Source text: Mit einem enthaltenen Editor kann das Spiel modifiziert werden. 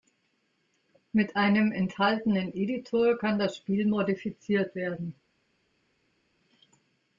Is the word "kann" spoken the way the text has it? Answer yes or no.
yes